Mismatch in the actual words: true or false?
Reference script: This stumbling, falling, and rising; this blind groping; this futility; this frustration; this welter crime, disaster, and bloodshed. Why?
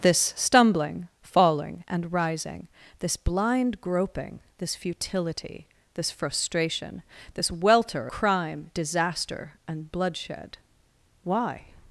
false